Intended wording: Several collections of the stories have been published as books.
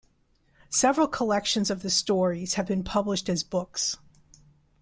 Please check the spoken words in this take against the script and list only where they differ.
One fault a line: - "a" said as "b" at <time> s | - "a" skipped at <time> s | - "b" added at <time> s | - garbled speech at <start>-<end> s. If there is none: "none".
none